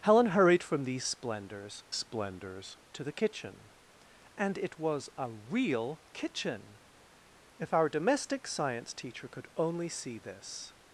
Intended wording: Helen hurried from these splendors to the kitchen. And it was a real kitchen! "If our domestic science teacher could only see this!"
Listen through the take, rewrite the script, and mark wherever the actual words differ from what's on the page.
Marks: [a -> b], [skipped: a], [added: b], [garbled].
Helen hurried from these splendors [added: splendors] to the kitchen. And it was a real kitchen! "If our domestic science teacher could only see this!"